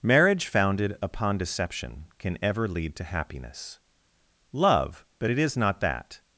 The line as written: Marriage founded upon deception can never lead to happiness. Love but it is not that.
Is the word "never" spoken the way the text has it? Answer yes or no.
no